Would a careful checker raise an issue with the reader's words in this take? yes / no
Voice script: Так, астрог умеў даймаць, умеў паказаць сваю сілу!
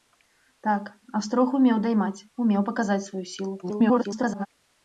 yes